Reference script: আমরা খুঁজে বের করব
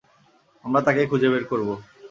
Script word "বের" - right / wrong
right